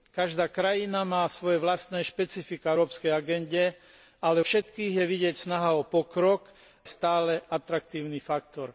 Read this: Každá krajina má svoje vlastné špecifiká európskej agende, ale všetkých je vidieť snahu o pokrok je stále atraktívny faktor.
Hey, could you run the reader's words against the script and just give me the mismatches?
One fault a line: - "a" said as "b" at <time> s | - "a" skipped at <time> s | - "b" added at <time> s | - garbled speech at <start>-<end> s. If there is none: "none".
none